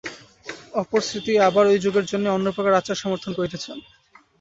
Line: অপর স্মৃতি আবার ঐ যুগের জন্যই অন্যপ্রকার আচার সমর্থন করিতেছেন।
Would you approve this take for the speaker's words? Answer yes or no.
yes